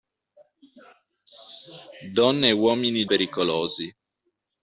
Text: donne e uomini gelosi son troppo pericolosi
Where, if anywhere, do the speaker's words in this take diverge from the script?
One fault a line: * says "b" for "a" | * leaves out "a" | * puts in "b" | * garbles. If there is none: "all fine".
* leaves out "gelosi son troppo"